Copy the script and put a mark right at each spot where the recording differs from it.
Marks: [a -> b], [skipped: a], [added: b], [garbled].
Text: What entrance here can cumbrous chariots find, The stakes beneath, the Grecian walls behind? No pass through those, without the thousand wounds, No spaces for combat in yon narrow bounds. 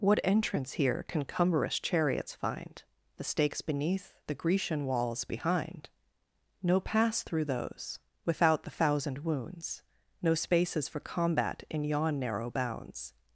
What entrance here can cumbrous chariots find, The stakes beneath, the Grecian walls behind? No pass through those, without the thousand wounds, No spaces for combat in yon narrow bounds.